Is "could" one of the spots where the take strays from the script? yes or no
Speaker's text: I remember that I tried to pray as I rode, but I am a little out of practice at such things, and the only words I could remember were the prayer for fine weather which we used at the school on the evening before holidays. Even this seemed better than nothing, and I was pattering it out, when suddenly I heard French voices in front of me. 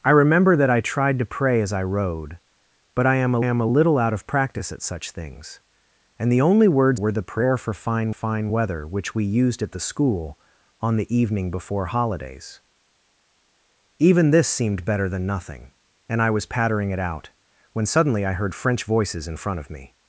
yes